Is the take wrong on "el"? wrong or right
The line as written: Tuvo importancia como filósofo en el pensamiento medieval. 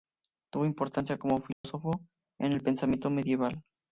right